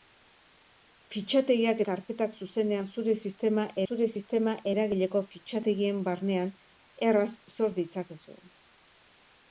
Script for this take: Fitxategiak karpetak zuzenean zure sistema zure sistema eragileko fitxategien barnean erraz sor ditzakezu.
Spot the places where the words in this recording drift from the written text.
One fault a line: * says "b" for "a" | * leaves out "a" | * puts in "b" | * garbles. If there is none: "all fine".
all fine